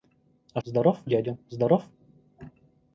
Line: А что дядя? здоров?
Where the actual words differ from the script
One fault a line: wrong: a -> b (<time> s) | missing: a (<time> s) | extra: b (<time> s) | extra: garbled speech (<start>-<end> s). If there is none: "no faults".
wrong: что -> здоров (0.6 s)